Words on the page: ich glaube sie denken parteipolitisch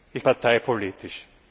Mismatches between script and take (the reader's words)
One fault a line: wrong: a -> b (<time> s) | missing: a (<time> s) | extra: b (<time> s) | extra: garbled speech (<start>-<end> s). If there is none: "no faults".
missing: glaube sie denken (0.2 s)